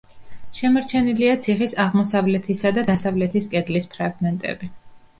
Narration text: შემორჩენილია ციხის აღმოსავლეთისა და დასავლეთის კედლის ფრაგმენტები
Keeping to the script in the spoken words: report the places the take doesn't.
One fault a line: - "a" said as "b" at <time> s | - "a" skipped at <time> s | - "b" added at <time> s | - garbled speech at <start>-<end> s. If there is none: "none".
none